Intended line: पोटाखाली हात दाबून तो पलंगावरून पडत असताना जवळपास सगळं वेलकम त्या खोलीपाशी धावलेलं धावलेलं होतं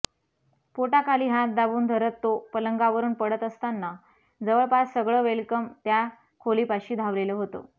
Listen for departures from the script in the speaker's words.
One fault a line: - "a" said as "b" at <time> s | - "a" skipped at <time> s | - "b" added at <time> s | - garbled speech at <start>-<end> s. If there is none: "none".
- "धरत" added at 1.9 s
- "धावलेलं" skipped at 7.3 s